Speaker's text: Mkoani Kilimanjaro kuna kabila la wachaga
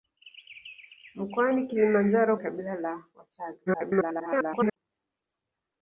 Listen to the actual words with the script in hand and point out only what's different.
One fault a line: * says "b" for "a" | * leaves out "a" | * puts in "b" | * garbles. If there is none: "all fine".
* leaves out "kuna"
* garbles